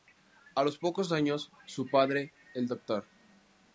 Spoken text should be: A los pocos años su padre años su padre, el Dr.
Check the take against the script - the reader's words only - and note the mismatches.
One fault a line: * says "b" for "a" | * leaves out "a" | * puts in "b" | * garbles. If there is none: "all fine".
* leaves out "años su padre"